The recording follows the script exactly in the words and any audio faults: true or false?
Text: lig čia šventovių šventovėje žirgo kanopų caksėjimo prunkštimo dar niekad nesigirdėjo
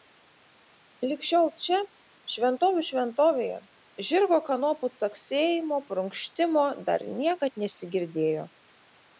false